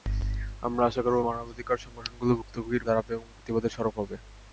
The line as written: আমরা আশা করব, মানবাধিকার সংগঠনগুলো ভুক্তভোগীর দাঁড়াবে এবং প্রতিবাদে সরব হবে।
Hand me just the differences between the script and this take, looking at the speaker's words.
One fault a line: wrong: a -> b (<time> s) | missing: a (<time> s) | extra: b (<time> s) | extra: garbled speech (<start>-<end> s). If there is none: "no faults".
no faults